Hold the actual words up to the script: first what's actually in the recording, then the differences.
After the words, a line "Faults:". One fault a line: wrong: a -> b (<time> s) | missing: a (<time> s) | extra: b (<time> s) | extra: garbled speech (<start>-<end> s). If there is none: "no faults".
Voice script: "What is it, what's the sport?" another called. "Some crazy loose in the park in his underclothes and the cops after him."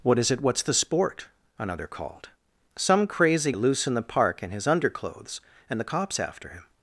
"What is it, what's the sport?" another called. "Some crazy loose in the park in his underclothes and the cops after him."
Faults:
no faults